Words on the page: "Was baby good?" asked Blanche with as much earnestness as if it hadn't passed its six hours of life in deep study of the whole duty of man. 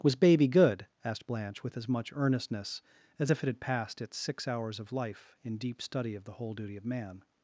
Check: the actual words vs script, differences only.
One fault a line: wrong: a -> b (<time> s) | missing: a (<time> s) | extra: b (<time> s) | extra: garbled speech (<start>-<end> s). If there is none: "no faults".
wrong: hadn't -> had (3.5 s)